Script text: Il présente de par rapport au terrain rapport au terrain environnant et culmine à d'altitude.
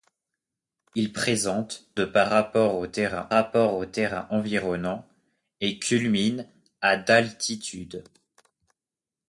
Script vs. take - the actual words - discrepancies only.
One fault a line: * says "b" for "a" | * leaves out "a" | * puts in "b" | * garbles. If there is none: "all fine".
all fine